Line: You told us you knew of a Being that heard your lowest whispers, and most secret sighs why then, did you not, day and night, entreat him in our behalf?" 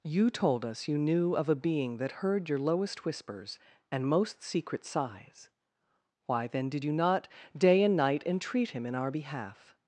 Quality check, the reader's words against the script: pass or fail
pass